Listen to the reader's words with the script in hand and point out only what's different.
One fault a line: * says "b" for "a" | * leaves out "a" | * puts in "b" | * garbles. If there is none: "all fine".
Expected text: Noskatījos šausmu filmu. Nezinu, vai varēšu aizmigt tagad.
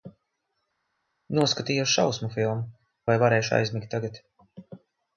* leaves out "Nezinu"